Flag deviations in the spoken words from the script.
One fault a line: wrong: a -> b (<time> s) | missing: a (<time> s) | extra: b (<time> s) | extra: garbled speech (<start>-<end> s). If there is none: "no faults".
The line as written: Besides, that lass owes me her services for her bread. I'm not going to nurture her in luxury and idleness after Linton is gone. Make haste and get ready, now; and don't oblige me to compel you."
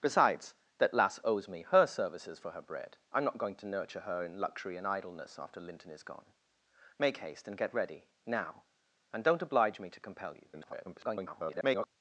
extra: garbled speech (10.5-11.9 s)